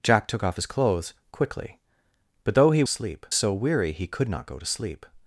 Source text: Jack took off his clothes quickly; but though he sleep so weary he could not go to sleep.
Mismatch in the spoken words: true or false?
false